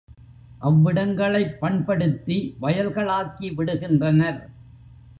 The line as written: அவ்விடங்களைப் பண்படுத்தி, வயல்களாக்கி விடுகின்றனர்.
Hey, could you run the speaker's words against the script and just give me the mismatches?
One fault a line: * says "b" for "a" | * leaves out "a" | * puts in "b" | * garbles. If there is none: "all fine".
all fine